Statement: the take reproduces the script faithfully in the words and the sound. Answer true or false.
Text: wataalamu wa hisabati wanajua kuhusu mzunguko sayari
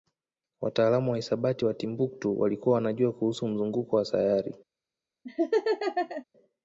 false